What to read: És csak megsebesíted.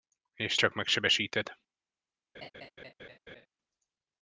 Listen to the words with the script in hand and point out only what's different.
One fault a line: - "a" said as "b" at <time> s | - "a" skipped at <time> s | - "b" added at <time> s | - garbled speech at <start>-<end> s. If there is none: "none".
none